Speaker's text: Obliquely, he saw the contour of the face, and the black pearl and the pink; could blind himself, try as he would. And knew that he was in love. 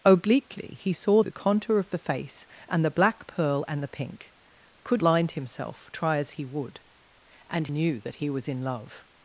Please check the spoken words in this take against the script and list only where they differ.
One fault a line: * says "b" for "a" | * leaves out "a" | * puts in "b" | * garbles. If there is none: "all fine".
all fine